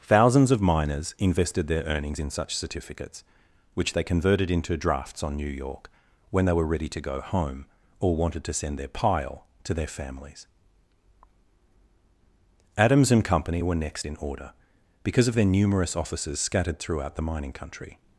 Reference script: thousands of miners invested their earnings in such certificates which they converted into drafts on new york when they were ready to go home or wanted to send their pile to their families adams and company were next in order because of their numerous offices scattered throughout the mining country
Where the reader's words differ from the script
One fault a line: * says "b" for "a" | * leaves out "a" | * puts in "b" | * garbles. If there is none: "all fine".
all fine